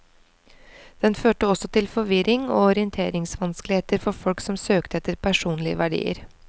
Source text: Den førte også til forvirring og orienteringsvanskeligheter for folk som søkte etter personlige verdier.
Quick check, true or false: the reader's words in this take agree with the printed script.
true